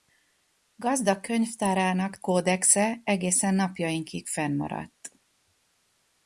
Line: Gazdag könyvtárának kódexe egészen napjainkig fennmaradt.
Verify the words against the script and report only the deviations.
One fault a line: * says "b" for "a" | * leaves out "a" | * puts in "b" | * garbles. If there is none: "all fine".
all fine